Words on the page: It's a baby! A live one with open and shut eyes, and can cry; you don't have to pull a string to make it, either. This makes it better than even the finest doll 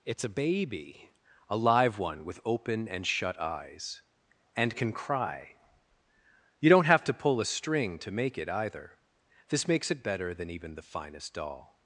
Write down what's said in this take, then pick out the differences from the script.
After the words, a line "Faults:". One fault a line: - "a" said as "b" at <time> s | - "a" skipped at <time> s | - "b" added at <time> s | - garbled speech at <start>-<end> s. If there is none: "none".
It's a baby! A live one with open and shut eyes, and can cry; you don't have to pull a string to make it, either. This makes it better than even the finest doll
Faults:
none